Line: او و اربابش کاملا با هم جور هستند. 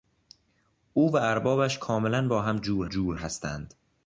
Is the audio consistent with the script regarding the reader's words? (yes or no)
no